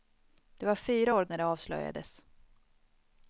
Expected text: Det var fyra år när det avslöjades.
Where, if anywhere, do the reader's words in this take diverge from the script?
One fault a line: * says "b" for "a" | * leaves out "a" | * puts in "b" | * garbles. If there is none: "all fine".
all fine